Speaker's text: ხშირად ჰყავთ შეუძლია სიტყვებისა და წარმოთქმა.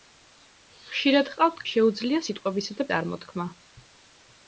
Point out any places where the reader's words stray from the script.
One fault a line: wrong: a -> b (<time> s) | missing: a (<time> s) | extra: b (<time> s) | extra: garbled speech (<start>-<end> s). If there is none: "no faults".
no faults